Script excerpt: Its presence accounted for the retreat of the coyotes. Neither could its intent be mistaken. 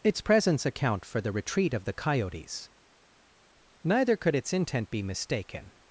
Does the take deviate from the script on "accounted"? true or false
true